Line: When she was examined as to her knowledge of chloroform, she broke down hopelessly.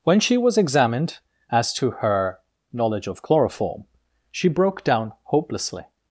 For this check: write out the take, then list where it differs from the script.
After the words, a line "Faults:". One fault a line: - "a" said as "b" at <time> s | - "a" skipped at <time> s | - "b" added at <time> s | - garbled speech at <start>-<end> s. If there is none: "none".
When she was examined as to her knowledge of chloroform, she broke down hopelessly.
Faults:
none